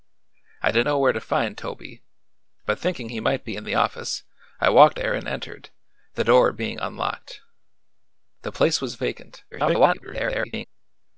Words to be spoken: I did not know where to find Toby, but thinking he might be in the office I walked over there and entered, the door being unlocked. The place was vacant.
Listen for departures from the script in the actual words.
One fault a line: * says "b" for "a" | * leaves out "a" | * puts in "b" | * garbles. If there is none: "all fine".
* leaves out "not"
* leaves out "over"
* garbles